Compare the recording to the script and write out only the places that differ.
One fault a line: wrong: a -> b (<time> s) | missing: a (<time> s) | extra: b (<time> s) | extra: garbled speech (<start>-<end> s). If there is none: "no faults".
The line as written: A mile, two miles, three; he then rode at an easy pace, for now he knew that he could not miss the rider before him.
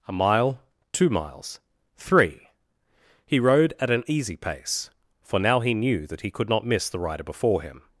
missing: then (3.4 s)